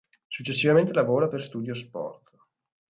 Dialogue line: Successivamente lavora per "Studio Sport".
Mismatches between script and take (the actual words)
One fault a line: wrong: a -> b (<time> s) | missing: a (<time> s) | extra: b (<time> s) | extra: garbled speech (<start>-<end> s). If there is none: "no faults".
no faults